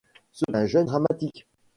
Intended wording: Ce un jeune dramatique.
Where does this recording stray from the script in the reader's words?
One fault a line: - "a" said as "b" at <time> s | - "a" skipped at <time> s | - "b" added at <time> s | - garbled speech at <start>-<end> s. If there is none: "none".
none